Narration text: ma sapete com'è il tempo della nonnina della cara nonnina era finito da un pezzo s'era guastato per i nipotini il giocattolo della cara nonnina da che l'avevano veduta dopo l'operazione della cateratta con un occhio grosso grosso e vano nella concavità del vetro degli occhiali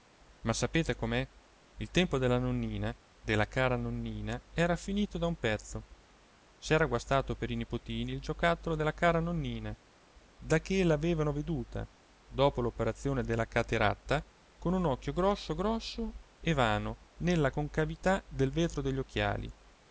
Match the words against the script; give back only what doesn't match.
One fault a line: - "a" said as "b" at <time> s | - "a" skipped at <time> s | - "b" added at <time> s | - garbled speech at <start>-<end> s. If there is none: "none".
none